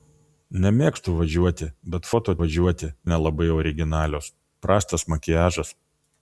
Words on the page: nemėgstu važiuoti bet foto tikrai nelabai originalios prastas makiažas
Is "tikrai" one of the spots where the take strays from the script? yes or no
yes